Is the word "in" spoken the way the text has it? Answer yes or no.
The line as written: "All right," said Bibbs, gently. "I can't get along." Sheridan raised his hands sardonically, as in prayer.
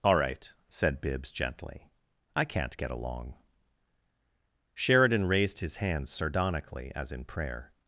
yes